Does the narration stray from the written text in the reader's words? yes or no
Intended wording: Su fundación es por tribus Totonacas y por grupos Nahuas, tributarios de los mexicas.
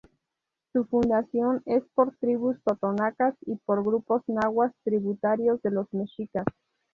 no